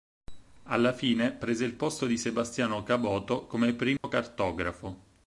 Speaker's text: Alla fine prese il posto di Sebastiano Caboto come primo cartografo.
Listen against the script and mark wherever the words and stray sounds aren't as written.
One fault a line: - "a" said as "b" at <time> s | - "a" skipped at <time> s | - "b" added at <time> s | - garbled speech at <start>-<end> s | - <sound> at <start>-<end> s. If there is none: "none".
- dropout at 4.0-4.0 s